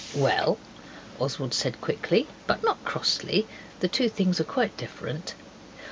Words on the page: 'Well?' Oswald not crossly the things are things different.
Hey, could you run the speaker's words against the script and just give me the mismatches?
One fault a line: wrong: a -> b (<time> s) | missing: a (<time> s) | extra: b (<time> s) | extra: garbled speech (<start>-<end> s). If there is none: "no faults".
extra: said quickly but (1.5 s)
extra: two (3.9 s)
wrong: things -> quite (4.4 s)